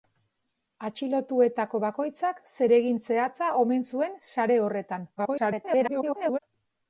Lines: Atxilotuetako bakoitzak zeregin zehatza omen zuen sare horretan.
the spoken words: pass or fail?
fail